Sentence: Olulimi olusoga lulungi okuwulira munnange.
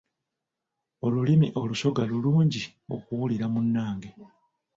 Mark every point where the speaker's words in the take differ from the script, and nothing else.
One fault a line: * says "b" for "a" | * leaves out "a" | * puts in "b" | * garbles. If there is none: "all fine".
all fine